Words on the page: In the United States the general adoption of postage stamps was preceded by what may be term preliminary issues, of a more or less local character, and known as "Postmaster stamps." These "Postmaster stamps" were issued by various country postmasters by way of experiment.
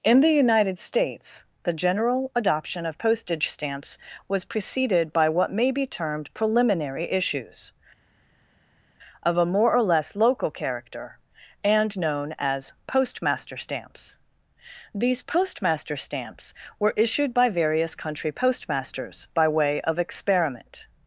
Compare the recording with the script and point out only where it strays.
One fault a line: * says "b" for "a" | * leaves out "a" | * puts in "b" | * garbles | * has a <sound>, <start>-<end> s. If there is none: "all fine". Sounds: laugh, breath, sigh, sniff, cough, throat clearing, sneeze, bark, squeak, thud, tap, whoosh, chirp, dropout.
* says "termed" for "term"